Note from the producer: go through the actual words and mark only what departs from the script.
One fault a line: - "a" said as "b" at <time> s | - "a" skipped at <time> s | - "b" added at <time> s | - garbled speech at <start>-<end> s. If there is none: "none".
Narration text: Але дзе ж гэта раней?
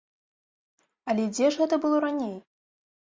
- "было" added at 1.9 s